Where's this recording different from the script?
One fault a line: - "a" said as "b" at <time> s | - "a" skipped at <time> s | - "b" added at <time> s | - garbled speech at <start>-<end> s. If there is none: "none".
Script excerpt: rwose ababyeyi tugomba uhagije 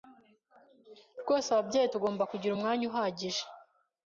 - "kugira umwanya" added at 2.3 s